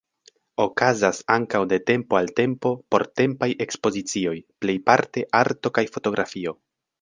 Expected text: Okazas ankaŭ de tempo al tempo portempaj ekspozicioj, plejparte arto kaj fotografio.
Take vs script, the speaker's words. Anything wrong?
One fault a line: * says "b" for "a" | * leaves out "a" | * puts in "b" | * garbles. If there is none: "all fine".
all fine